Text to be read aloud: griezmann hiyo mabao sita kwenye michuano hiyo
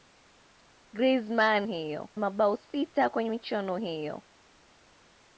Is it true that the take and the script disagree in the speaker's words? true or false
false